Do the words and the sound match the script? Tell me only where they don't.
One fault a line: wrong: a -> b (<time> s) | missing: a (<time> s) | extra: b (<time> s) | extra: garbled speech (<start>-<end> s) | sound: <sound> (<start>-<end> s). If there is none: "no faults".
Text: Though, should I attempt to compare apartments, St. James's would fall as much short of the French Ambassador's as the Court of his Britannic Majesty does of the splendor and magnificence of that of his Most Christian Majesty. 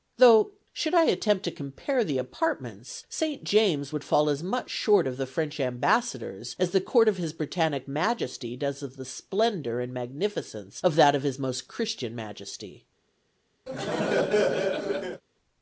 extra: the (2.0 s)
sound: laugh (13.7-15.2 s)